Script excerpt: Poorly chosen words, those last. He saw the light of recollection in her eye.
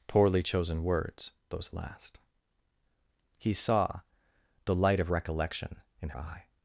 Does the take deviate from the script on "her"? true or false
true